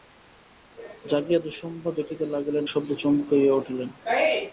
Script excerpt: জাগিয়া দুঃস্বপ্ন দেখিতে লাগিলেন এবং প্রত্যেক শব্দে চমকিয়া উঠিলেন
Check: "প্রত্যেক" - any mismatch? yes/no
yes